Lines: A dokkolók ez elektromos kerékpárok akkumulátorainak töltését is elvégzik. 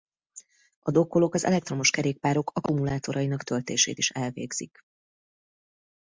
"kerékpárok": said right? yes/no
yes